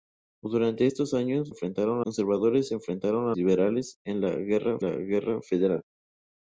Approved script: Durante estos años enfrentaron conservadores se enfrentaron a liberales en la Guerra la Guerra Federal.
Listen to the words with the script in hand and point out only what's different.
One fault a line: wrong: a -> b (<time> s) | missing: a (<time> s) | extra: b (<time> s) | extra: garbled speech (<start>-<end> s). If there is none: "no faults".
no faults